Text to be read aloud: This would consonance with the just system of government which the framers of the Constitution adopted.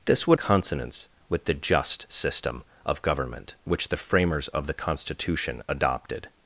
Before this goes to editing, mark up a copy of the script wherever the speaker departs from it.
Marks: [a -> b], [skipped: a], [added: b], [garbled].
This would consonance with the just system of government which the framers of the Constitution adopted.